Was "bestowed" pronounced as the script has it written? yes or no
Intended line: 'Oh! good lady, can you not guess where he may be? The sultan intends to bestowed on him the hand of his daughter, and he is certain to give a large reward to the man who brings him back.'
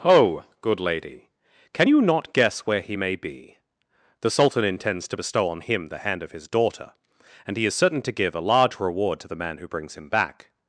no